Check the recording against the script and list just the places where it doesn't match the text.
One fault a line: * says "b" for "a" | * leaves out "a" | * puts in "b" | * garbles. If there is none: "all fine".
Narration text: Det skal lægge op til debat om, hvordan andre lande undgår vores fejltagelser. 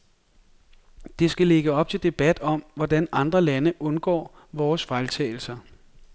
all fine